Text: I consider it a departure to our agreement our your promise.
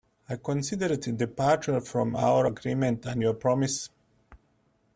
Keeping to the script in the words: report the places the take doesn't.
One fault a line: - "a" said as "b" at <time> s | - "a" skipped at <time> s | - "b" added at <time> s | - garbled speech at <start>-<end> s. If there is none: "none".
- "to" said as "from" at 1.8 s
- "our" said as "and" at 3.0 s